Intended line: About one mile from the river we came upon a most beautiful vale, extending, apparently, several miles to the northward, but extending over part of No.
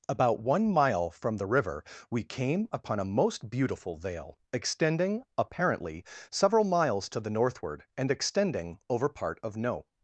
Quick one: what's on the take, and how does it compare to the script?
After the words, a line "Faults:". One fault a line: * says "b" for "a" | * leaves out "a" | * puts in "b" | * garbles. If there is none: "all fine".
About one mile from the river we came upon a most beautiful vale, extending, apparently, several miles to the northward, and extending over part of No.
Faults:
* says "and" for "but"